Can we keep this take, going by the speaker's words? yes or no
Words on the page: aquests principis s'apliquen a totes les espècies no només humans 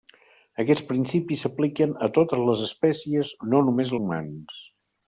yes